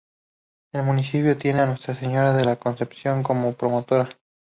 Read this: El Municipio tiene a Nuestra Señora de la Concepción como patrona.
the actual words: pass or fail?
pass